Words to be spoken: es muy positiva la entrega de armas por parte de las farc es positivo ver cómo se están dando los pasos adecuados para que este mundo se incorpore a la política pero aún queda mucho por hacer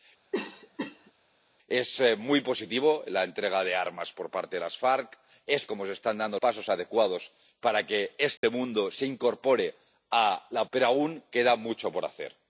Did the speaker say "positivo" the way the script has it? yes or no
no